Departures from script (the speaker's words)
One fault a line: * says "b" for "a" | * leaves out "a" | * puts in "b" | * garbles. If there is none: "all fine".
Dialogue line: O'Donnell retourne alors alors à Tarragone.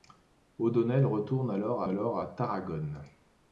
all fine